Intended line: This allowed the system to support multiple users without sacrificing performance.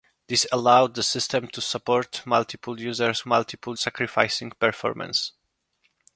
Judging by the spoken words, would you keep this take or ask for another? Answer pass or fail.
fail